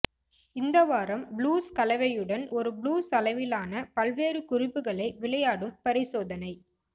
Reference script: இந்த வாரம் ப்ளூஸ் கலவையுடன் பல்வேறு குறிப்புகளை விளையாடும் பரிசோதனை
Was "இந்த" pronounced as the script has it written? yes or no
yes